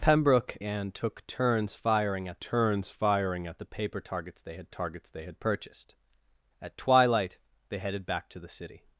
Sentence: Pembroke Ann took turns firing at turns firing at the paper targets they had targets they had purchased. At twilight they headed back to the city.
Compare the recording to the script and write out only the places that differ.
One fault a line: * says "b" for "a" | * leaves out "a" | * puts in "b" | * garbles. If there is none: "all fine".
all fine